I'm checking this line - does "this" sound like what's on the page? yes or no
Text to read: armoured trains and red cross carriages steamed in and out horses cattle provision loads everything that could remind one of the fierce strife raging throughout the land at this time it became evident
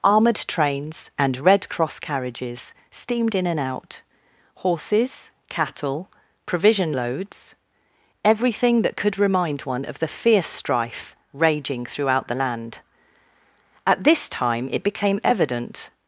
yes